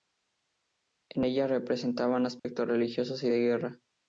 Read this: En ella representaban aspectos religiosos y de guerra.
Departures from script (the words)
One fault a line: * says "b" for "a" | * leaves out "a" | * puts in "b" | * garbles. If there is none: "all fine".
all fine